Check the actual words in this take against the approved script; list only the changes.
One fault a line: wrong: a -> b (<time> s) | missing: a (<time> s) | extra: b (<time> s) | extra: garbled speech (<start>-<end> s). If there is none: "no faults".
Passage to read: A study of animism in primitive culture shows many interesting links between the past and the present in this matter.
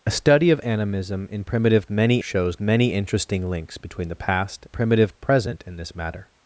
wrong: culture -> many (1.9 s)
wrong: and -> primitive (4.7 s)